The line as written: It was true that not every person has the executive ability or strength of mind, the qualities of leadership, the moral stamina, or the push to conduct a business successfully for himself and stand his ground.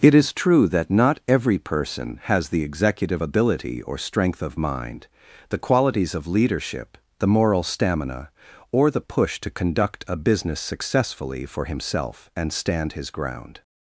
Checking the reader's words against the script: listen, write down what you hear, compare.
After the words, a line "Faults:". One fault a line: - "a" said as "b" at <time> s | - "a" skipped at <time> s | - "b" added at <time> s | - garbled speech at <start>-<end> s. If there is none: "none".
It is true that not every person has the executive ability or strength of mind, the qualities of leadership, the moral stamina, or the push to conduct a business successfully for himself and stand his ground.
Faults:
- "was" said as "is" at 0.1 s